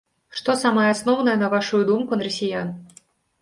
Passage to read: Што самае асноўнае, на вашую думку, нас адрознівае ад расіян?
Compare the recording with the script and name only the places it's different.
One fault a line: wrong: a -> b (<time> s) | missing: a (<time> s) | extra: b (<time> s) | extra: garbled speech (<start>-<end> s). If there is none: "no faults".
missing: нас адрознівае (2.2 s)